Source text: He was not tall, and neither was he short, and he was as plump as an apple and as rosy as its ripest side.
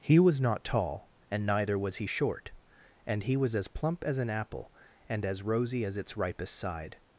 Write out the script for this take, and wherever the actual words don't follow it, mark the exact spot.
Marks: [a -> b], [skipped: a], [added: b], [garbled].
He was not tall, and neither was he short, and he was as plump as an apple and as rosy as its ripest side.